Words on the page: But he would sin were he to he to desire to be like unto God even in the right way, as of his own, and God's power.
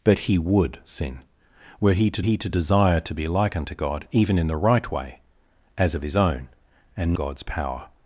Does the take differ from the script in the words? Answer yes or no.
no